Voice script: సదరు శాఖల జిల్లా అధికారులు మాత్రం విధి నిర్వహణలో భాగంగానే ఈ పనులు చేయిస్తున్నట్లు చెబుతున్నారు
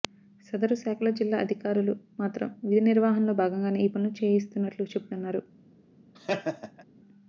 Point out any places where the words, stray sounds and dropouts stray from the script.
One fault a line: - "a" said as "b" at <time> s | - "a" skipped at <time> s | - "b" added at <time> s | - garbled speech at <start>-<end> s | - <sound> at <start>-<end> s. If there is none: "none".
- laugh at 6.1-6.8 s